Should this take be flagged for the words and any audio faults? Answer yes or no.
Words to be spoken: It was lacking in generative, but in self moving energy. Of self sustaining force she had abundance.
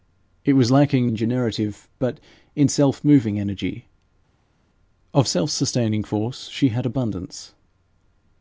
no